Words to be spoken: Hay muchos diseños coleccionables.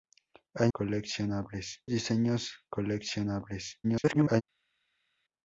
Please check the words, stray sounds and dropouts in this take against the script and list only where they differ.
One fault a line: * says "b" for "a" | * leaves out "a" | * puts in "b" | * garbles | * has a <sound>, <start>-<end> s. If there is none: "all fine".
* says "coleccionables" for "muchos"
* garbles